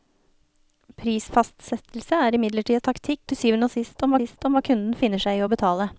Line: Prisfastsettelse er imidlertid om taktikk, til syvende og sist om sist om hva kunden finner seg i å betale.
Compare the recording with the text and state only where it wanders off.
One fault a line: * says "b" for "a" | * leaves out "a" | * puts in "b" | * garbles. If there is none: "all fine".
all fine